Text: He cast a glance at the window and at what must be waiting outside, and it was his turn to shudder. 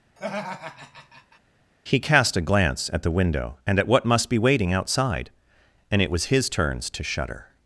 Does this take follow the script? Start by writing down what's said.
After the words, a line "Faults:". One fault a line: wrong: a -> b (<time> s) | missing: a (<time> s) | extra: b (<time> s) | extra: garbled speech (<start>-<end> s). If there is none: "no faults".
He cast a glance at the window and at what must be waiting outside, and it was his turns to shudder.
Faults:
wrong: turn -> turns (6.5 s)